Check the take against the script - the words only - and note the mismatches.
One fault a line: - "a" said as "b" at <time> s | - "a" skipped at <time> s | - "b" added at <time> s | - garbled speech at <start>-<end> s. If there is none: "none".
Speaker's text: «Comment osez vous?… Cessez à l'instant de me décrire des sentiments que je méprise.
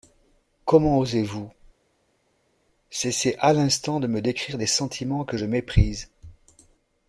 none